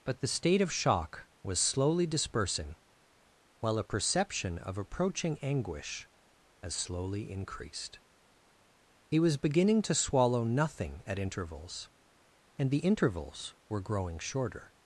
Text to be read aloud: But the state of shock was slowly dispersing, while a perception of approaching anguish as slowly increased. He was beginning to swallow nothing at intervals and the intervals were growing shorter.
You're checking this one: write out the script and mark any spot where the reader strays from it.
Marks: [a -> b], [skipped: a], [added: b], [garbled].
But the state of shock was slowly dispersing, while a perception of approaching anguish as slowly increased. He was beginning to swallow nothing at intervals and the intervals were growing shorter.